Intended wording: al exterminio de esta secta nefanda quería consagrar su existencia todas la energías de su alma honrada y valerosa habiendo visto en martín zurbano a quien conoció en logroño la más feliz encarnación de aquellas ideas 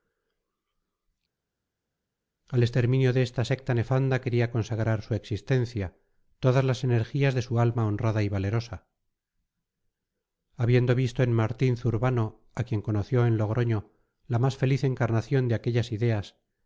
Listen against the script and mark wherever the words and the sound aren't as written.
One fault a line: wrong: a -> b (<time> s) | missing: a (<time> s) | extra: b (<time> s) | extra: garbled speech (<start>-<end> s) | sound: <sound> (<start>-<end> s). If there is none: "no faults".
wrong: la -> las (6.6 s)